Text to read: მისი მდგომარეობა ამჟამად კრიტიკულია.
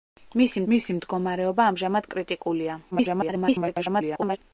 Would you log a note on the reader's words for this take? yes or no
yes